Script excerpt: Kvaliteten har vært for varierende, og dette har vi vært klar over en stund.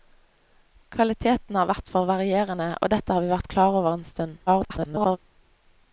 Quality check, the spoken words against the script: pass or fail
fail